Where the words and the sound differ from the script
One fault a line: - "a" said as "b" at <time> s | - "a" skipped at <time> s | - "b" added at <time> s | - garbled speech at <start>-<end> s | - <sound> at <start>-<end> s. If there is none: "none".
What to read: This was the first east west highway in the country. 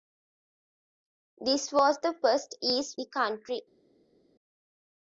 - "west highway in" skipped at 3.0 s